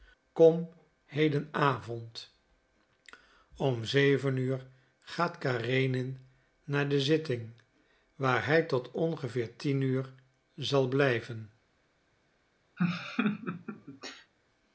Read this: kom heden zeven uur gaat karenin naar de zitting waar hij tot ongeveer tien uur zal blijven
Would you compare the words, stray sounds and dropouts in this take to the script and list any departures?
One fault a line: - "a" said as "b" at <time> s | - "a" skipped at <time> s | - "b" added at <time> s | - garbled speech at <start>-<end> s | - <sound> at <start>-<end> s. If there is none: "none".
- "avond om" added at 1.5 s
- laugh at 12.8-14.3 s